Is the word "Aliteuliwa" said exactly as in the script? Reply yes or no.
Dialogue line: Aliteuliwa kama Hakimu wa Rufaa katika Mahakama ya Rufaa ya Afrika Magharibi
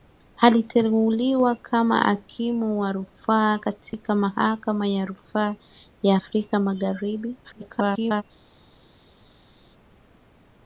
yes